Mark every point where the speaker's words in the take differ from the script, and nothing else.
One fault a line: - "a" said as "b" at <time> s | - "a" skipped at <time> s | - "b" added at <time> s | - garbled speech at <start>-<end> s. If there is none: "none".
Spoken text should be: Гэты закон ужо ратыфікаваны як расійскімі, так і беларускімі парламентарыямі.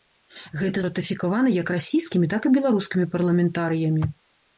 - "закон ужо" skipped at 0.8 s